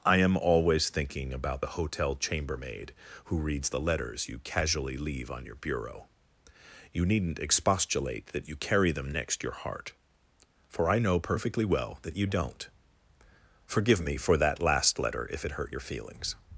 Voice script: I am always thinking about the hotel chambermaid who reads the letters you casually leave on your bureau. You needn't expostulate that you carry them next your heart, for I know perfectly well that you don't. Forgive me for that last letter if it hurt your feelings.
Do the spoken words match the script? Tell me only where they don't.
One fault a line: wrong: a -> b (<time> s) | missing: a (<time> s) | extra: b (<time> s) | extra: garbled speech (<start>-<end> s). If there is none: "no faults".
no faults